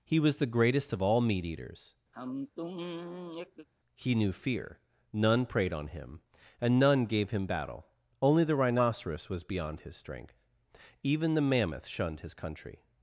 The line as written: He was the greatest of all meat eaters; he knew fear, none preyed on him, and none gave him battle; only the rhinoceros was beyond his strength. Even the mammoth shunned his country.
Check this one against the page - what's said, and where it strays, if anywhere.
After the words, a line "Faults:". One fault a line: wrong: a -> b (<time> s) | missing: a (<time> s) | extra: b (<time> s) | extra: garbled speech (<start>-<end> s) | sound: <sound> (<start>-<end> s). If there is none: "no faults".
He was the greatest of all meat eaters; he knew fear, none preyed on him, and none gave him battle; only the rhinoceros was beyond his strength. Even the mammoth shunned his country.
Faults:
sound: sigh (2.1-3.7 s)